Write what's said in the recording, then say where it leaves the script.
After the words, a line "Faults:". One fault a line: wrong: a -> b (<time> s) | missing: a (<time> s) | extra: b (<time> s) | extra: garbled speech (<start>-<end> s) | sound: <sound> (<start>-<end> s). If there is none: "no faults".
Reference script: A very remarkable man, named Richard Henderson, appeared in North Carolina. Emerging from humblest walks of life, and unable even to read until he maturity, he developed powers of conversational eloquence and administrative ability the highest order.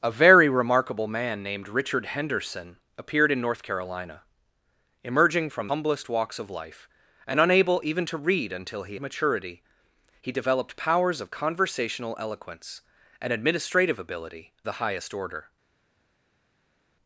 A very remarkable man, named Richard Henderson, appeared in North Carolina. Emerging from humblest walks of life, and unable even to read until he maturity, he developed powers of conversational eloquence and administrative ability the highest order.
Faults:
no faults